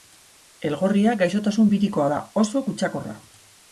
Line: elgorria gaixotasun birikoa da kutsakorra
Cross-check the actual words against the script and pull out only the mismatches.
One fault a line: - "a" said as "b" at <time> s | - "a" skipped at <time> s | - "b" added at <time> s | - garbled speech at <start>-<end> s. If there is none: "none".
- "oso" added at 2.4 s